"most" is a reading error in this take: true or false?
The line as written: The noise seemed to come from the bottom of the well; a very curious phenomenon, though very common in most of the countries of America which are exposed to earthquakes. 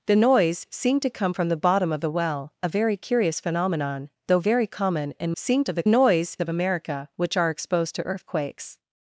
true